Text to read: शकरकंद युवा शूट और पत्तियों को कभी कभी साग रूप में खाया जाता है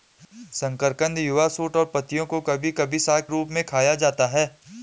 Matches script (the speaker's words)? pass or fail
pass